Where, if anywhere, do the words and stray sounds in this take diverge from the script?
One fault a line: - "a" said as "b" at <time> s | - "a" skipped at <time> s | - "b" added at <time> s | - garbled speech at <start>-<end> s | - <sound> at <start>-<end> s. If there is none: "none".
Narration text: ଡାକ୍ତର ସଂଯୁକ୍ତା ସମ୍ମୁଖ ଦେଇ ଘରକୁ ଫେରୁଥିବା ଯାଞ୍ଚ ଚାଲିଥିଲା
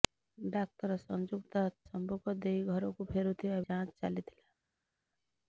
none